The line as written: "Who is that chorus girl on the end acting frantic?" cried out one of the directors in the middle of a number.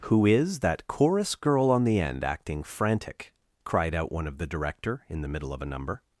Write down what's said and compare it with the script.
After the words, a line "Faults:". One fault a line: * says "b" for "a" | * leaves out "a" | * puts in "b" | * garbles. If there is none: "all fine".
"Who is that chorus girl on the end acting frantic?" cried out one of the director in the middle of a number.
Faults:
* says "director" for "directors"